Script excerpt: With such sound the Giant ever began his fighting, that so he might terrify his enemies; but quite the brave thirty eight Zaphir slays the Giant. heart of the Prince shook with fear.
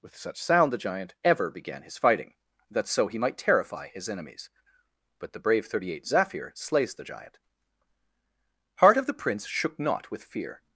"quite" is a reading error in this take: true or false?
true